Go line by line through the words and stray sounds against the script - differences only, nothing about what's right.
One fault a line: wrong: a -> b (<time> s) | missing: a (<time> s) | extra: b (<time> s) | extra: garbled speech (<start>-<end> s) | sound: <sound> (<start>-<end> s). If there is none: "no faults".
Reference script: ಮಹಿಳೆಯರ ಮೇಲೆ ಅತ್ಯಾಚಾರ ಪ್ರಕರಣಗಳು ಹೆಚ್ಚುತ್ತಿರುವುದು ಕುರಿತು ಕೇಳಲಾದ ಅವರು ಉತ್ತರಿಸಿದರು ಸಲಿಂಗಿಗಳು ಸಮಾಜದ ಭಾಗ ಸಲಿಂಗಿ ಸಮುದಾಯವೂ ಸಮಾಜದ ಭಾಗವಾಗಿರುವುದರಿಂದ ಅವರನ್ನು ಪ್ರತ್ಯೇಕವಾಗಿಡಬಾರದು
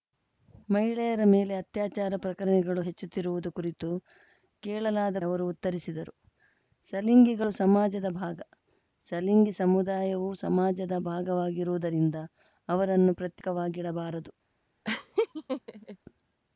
sound: laugh (14.8-16.0 s)